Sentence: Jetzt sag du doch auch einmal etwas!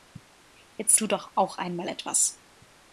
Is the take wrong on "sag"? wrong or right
wrong